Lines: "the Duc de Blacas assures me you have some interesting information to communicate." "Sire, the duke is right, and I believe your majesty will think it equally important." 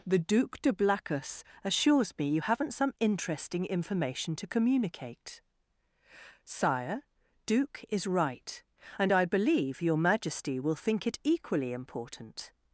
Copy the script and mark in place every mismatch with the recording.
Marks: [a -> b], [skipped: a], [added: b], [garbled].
"the Duc de Blacas assures me you [have -> haven't] some interesting information to communicate." "Sire, [skipped: the] duke is right, and I believe your majesty will think it equally important."